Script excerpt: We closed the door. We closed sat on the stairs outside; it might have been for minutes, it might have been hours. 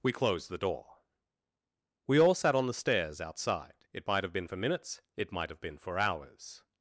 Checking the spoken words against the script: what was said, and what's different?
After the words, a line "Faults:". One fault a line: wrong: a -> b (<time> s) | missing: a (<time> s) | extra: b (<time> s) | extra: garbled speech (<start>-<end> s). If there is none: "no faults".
We closed the door. We all sat on the stairs outside; it might have been for minutes, it might have been for hours.
Faults:
wrong: closed -> all (2.2 s)
extra: for (5.8 s)